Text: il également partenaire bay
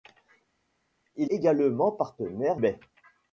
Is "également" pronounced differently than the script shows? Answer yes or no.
no